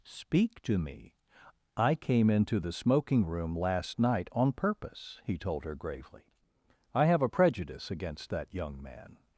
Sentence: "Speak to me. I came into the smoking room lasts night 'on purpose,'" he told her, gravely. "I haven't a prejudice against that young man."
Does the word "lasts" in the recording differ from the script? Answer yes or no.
yes